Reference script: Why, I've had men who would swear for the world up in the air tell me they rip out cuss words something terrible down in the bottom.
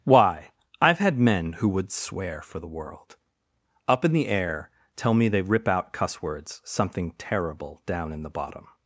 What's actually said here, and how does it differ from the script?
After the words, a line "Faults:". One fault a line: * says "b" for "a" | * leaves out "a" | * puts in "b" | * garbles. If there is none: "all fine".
Why, I've had men who would swear for the world up in the air tell me they rip out cuss words something terrible down in the bottom.
Faults:
all fine